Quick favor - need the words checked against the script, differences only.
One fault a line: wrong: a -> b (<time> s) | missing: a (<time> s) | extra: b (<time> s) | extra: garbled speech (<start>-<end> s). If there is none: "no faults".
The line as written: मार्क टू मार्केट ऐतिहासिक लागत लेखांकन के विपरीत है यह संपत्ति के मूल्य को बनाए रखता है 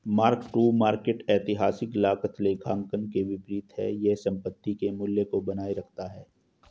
no faults